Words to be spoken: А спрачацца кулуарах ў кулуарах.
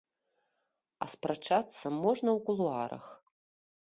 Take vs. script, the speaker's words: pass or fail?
fail